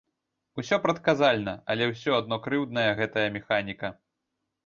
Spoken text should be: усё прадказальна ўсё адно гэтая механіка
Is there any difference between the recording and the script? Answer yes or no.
yes